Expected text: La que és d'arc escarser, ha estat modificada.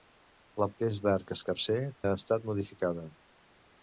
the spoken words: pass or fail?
pass